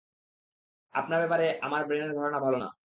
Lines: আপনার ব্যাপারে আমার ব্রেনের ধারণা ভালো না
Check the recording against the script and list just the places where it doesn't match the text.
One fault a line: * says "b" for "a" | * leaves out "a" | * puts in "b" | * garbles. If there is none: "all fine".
all fine